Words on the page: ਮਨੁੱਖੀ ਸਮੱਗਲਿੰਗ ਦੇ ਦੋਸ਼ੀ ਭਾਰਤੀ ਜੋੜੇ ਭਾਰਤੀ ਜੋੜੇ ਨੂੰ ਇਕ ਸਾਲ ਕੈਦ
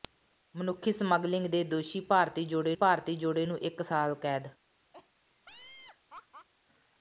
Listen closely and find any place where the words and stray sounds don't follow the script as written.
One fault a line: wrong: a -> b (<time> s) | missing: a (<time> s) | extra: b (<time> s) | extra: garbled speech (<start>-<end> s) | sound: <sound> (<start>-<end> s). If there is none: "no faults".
sound: laugh (4.9-6.5 s)